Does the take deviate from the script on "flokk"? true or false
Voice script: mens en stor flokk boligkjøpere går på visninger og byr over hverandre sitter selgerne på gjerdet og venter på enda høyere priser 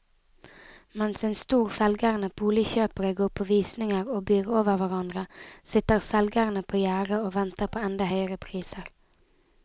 true